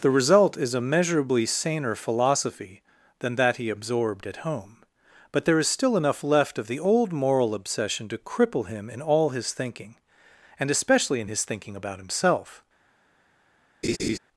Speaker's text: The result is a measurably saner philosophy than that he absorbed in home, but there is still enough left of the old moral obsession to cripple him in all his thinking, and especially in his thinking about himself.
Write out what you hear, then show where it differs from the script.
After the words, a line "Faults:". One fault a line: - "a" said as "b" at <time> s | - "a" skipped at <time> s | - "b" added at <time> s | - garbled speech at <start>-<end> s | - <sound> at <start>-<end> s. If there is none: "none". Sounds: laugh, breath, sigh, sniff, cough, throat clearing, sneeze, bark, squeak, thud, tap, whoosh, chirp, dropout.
The result is a measurably saner philosophy than that he absorbed at home, but there is still enough left of the old moral obsession to cripple him in all his thinking, and especially in his thinking about himself.
Faults:
- "in" said as "at" at 4.2 s
- laugh at 13.8-14.2 s